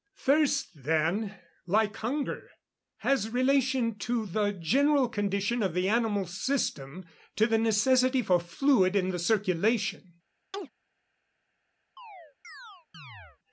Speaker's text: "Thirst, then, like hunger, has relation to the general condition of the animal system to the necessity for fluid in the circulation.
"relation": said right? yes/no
yes